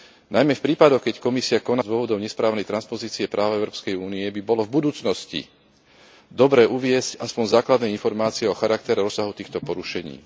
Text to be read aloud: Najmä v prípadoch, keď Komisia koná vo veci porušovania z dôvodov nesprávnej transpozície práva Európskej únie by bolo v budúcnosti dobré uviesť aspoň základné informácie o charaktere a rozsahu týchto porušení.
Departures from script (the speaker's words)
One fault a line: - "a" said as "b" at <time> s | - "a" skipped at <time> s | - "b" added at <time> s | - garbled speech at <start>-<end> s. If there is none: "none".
- "vo veci porušovania" skipped at 1.8 s